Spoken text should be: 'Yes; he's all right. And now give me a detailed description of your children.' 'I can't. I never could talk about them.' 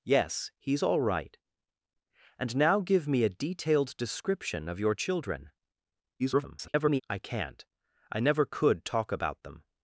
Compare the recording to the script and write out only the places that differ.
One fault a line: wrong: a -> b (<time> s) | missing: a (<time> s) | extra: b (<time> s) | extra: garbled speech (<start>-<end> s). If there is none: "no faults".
extra: garbled speech (6.2-7.0 s)